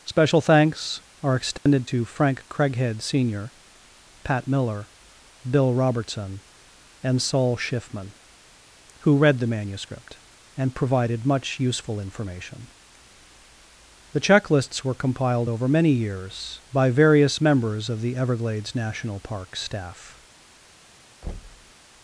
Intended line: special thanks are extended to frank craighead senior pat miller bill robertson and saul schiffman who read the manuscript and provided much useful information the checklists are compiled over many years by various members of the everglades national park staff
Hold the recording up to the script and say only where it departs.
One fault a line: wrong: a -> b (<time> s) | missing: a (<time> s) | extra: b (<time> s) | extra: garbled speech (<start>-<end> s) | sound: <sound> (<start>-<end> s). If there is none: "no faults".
sound: dropout (1.6-1.7 s)
wrong: are -> were (14.8 s)
sound: thud (21.2-21.7 s)